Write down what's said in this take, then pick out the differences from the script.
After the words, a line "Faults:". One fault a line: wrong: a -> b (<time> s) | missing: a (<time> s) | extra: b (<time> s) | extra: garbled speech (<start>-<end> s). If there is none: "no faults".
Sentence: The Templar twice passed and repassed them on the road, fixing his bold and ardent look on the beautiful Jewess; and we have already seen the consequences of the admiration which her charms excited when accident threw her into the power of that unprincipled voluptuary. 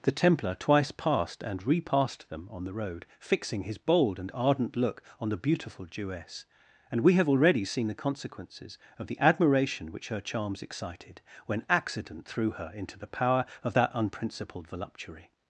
The Templar twice passed and repassed them on the road, fixing his bold and ardent look on the beautiful Jewess; and we have already seen the consequences of the admiration which her charms excited when accident threw her into the power of that unprincipled voluptuary.
Faults:
no faults